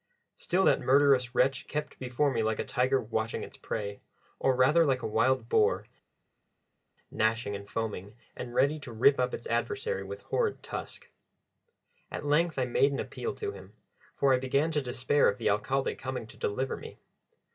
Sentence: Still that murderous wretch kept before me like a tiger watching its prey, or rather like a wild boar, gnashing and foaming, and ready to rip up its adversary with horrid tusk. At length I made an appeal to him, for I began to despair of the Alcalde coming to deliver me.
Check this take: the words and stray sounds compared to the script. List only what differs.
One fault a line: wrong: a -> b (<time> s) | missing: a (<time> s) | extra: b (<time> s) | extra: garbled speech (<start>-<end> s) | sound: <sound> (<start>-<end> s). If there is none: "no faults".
no faults